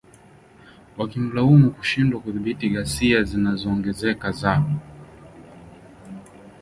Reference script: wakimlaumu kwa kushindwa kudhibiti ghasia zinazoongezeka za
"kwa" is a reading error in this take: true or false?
true